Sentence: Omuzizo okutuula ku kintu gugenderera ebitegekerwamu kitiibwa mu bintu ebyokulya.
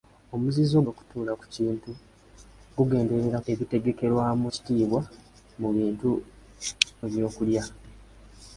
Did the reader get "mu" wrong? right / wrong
right